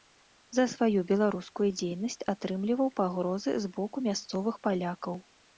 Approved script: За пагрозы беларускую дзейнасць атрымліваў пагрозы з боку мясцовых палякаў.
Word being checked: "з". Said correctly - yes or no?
yes